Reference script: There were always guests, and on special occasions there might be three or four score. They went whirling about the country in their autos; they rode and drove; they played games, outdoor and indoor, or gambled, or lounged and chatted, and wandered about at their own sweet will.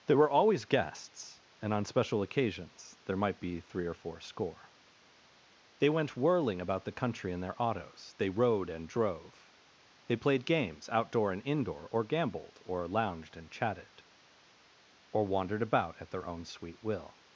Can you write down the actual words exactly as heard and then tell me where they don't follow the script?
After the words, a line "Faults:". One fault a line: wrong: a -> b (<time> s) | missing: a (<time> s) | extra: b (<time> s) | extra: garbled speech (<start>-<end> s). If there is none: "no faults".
There were always guests, and on special occasions there might be three or four score. They went whirling about the country in their autos; they rode and drove; they played games, outdoor and indoor, or gambled, or lounged and chatted, or wandered about at their own sweet will.
Faults:
wrong: and -> or (15.1 s)